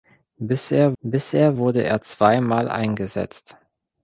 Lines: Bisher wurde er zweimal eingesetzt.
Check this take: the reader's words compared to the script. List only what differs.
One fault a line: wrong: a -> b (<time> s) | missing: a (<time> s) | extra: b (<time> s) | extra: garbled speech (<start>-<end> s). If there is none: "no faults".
extra: bisher (1.0 s)